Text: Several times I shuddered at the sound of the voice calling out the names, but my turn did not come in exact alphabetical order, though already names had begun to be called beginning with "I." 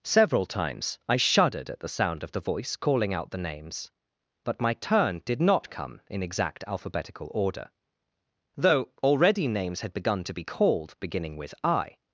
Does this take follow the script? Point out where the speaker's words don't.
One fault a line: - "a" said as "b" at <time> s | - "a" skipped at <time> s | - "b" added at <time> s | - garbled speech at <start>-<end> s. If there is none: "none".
none